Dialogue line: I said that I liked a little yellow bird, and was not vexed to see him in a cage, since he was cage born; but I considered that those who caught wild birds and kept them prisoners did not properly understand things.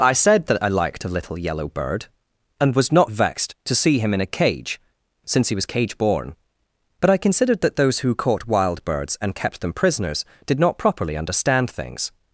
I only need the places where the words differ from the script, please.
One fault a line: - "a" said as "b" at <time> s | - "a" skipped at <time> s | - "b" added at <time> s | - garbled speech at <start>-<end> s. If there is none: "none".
none